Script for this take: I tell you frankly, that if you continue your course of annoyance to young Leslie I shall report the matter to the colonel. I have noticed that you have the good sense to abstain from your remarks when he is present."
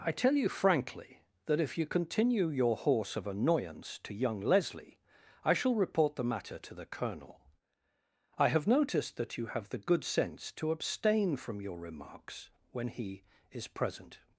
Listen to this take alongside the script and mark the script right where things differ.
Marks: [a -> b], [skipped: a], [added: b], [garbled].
I tell you frankly, that if you continue your [course -> horse] of annoyance to young Leslie I shall report the matter to the colonel. I have noticed that you have the good sense to abstain from your remarks when he is present."